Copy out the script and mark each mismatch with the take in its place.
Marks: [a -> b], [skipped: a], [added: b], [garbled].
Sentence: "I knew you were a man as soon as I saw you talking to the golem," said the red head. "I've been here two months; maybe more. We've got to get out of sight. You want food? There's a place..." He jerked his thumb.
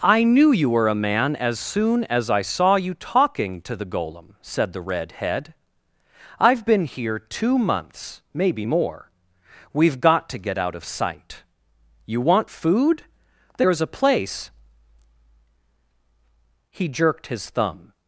"I knew you were a man as soon as I saw you talking to the golem," said the red head. "I've been here two months; maybe more. We've got to get out of sight. You want food? There's a place..." He jerked his thumb.